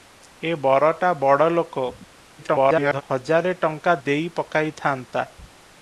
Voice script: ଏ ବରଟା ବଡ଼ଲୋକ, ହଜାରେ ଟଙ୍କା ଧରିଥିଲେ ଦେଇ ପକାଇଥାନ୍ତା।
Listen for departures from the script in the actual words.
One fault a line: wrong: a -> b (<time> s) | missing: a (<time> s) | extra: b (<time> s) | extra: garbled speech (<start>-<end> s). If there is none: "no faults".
extra: garbled speech (2.4-3.0 s)
missing: ଧରିଥିଲେ (4.0 s)